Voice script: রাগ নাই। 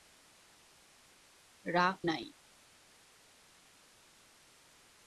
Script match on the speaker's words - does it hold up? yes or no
yes